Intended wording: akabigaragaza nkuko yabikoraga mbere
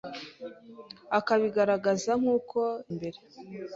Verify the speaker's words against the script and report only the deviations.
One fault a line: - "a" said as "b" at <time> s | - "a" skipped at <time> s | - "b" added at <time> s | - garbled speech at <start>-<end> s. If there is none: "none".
- "yabikoraga" skipped at 2.6 s